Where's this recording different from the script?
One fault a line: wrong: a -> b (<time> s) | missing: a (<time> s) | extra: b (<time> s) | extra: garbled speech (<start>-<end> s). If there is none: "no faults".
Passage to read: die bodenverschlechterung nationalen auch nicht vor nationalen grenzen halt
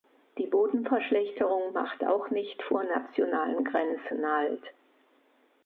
wrong: nationalen -> macht (1.7 s)